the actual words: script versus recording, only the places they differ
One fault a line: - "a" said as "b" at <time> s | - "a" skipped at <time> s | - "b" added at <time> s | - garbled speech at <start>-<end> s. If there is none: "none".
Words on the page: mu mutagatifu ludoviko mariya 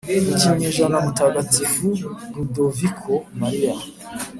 - "kinyejana" added at 0.4 s